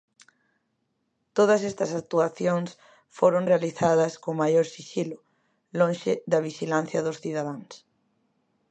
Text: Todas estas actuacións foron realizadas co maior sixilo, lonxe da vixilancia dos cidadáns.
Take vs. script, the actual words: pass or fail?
pass